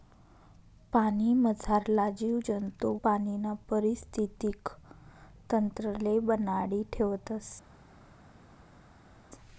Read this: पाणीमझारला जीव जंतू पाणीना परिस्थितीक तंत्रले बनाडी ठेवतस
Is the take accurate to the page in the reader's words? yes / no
yes